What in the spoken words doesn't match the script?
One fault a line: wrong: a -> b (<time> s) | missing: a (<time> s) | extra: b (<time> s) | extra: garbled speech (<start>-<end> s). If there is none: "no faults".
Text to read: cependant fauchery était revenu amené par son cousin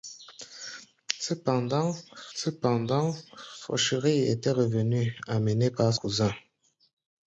extra: cependant (2.3 s)
missing: son (5.9 s)